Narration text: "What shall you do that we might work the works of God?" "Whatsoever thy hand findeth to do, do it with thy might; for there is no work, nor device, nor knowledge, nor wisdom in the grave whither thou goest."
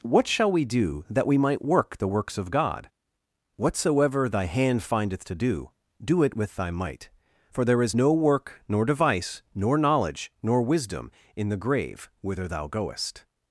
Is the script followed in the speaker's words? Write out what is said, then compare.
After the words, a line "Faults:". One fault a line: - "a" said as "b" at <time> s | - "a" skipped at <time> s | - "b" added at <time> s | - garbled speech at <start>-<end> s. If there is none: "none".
"What shall we do that we might work the works of God?" "Whatsoever thy hand findeth to do, do it with thy might; for there is no work, nor device, nor knowledge, nor wisdom in the grave whither thou goest."
Faults:
- "you" said as "we" at 0.5 s